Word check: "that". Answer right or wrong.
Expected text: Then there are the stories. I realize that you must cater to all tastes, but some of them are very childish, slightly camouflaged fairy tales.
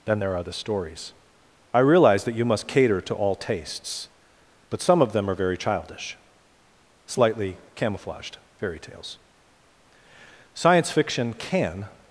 right